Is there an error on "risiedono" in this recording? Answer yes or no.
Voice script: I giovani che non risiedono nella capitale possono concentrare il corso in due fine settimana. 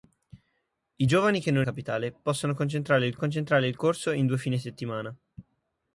yes